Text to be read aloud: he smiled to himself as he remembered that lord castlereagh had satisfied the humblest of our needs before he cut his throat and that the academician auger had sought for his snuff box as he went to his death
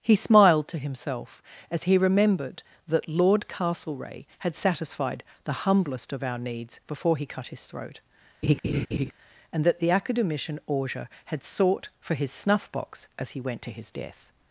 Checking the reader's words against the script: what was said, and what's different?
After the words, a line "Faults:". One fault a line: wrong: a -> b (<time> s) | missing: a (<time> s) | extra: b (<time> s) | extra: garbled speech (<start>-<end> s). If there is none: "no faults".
he smiled to himself as he remembered that lord castlereagh had satisfied the humblest of our needs before he cut his throat and that the academician auger had sought for his snuff box as he went to his death
Faults:
no faults